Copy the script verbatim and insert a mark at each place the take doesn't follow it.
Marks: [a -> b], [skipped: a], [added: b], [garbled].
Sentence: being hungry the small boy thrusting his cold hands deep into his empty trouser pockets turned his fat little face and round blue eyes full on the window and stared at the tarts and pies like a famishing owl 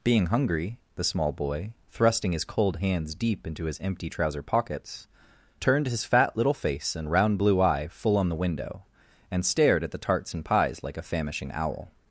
being hungry the small boy thrusting his cold hands deep into his empty trouser pockets turned his fat little face and round blue [eyes -> eye] full on the window and stared at the tarts and pies like a famishing owl